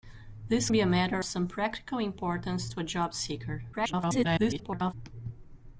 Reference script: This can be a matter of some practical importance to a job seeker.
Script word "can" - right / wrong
wrong